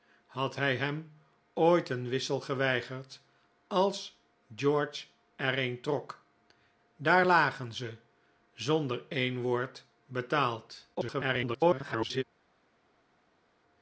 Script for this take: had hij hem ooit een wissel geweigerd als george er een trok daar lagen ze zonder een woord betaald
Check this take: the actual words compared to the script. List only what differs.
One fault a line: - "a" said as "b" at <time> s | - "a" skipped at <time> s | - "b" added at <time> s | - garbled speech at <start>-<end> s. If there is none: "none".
- garbled speech at 10.9-12.2 s